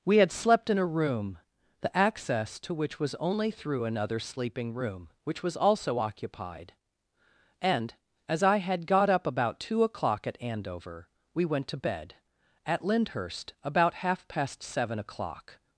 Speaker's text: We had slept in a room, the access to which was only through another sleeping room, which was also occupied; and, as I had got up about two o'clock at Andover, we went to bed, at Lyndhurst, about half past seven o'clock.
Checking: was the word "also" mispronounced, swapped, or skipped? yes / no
no